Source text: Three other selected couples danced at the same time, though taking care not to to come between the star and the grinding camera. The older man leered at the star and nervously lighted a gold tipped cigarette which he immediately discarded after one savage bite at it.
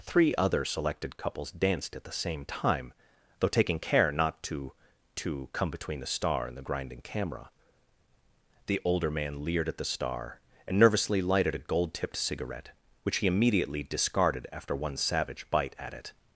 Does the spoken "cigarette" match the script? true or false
true